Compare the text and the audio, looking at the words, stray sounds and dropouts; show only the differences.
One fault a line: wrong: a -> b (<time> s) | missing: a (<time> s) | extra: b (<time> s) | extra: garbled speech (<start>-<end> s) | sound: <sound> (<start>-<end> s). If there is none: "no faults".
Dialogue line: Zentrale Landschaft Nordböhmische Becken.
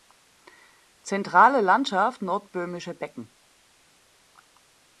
no faults